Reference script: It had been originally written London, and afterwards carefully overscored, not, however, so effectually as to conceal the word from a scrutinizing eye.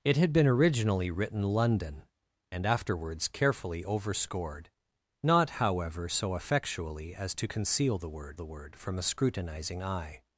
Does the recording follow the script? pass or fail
fail